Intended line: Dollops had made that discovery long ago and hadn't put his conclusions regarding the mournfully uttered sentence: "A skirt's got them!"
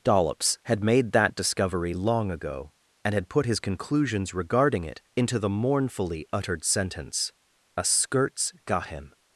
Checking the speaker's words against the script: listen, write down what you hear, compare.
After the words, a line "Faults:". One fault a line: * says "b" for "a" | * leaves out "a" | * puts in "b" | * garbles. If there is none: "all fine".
Dollops had made that discovery long ago and had put his conclusions regarding it into the mournfully uttered sentence: "A skirt's got him!"
Faults:
* says "had" for "hadn't"
* puts in "it into"
* says "him" for "them"